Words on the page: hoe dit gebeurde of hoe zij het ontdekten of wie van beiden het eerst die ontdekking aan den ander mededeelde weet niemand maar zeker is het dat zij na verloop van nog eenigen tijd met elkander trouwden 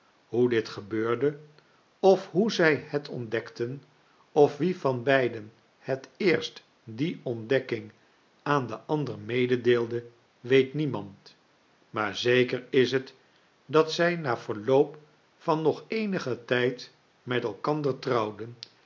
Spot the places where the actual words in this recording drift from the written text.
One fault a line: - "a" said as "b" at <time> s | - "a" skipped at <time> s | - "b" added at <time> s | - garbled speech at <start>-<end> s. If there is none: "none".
none